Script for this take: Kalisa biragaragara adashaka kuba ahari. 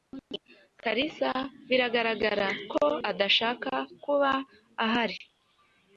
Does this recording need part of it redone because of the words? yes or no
yes